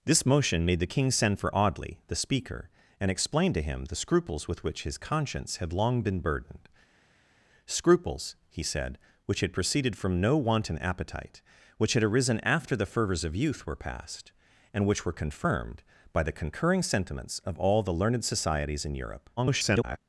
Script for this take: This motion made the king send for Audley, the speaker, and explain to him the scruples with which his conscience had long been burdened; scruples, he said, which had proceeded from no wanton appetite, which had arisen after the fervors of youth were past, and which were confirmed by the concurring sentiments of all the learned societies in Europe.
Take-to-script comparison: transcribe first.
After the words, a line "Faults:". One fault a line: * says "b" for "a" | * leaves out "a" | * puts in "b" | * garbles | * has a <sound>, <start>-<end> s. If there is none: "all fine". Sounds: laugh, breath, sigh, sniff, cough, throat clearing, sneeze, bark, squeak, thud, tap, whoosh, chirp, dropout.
This motion made the king send for Audley, the speaker, and explain to him the scruples with which his conscience had long been burdened; scruples, he said, which had proceeded from no wanton appetite, which had arisen after the fervors of youth were past, and which were confirmed by the concurring sentiments of all the learned societies in Europe. [garbled]
Faults:
* garbles